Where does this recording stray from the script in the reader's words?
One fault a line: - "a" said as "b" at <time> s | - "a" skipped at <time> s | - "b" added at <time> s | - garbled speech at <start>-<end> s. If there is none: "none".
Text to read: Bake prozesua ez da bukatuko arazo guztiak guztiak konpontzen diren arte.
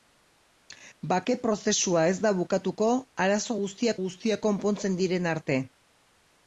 none